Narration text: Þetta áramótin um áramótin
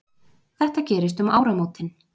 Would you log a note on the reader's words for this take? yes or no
yes